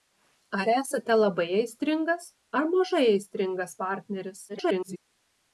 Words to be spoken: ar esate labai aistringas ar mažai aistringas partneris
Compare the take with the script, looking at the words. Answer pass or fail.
fail